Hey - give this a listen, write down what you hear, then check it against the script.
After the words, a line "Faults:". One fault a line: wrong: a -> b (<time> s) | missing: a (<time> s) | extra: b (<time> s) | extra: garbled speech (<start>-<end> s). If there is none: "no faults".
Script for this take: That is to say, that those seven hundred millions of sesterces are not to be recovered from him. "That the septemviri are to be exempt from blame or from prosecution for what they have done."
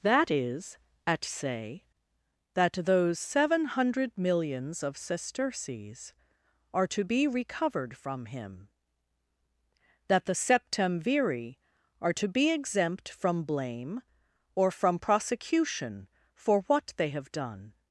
That is at say, that those seven hundred millions of sesterces are to be recovered from him. "That the septemviri are to be exempt from blame or from prosecution for what they have done."
Faults:
wrong: to -> at (1.1 s)
missing: not (6.9 s)